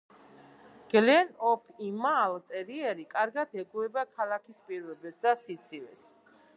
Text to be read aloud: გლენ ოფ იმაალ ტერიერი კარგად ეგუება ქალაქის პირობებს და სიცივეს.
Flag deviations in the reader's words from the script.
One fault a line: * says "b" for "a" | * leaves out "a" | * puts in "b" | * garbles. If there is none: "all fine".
all fine